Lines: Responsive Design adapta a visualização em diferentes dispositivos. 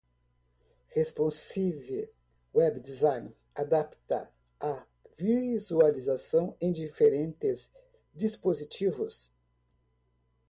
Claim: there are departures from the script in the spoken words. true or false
true